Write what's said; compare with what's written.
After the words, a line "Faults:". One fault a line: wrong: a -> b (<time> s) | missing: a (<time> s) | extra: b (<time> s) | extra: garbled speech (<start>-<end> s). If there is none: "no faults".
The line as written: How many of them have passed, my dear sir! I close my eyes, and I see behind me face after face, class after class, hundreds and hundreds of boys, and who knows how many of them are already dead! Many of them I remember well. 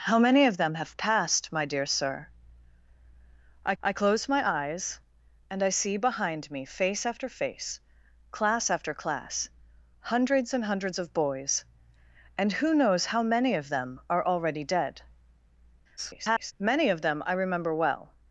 How many of them have passed, my dear sir! I I close my eyes, and I see behind me face after face, class after class, hundreds and hundreds of boys, and who knows how many of them are already dead! [garbled] Many of them I remember well.
Faults:
extra: I (3.8 s)
extra: garbled speech (16.0-16.5 s)